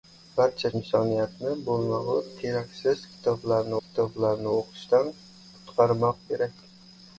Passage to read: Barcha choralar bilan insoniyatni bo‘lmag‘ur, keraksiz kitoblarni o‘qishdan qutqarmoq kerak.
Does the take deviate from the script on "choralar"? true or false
true